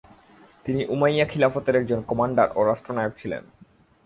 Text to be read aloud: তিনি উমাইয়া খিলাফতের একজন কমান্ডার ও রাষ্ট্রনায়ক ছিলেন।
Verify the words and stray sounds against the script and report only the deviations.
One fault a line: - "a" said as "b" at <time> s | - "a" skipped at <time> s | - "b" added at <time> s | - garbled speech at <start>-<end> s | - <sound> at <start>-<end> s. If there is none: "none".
none